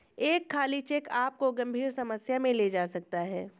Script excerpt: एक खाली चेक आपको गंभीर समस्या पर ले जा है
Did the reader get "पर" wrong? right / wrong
wrong